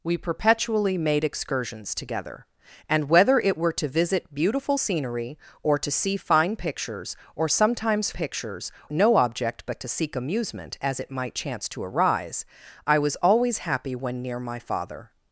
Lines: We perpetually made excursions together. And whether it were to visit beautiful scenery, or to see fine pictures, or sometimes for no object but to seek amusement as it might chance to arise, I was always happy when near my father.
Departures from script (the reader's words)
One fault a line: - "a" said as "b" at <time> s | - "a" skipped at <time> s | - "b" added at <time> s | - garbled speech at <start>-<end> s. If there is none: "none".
- "for" said as "pictures" at 8.1 s